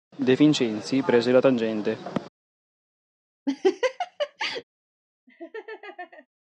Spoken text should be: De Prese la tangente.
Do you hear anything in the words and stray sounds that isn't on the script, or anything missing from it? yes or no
yes